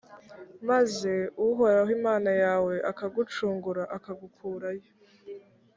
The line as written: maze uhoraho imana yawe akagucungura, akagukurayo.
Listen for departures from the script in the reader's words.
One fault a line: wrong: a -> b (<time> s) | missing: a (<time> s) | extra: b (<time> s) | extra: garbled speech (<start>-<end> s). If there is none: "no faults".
no faults